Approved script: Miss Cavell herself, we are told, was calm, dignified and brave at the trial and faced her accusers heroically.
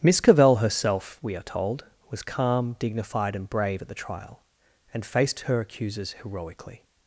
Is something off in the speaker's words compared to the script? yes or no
no